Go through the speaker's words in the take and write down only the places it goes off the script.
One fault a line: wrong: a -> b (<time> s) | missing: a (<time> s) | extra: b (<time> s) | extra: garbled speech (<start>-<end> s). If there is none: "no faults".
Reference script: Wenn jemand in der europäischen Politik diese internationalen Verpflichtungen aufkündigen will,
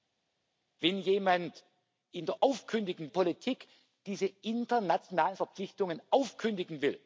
wrong: europäischen -> aufkündigen (2.4 s)